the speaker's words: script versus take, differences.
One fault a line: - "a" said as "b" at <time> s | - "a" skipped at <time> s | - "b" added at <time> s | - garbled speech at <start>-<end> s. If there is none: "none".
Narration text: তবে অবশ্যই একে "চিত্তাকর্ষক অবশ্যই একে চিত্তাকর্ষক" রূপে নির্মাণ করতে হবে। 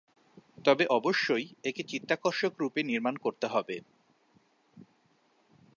- "অবশ্যই একে চিত্তাকর্ষক" skipped at 2.5 s